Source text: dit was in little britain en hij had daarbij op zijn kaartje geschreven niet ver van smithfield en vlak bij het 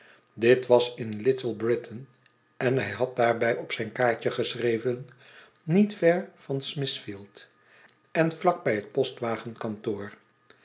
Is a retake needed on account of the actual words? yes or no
no